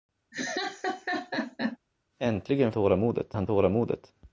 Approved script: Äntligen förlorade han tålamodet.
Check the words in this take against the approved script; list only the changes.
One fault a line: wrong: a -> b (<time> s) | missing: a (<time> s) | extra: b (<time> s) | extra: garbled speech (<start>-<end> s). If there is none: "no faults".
wrong: förlorade -> tålamodet (2.7 s)